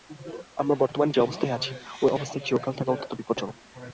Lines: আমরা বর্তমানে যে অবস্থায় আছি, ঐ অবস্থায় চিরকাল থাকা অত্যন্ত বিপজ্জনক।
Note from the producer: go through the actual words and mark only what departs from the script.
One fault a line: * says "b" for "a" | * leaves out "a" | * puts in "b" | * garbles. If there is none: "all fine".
all fine